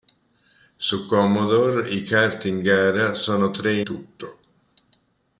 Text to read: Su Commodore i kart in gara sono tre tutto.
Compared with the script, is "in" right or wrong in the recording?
right